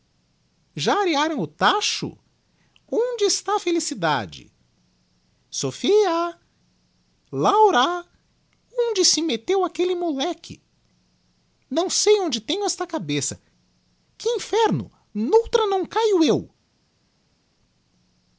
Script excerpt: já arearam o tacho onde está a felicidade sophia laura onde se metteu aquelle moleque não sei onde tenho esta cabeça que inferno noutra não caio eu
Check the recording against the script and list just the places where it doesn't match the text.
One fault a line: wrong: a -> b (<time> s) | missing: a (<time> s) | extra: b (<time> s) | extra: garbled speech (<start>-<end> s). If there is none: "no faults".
no faults